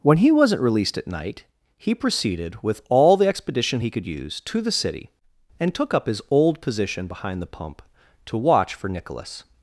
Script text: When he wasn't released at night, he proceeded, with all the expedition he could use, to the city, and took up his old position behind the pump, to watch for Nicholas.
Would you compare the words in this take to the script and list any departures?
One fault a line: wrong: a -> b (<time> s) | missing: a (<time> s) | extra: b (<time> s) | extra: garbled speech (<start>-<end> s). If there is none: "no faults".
no faults